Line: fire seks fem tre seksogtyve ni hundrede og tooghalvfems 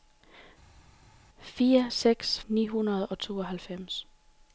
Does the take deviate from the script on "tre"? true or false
true